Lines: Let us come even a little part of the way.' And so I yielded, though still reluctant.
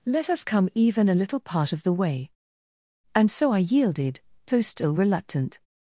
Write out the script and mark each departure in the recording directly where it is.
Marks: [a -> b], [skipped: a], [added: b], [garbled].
Let us come even a little part of the way.' And so I yielded, though still reluctant.